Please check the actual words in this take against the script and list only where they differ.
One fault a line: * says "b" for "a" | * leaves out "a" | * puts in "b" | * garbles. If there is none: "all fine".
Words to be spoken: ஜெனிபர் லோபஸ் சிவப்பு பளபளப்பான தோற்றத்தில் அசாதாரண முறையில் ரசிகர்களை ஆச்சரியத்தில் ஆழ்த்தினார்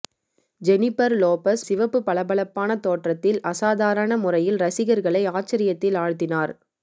all fine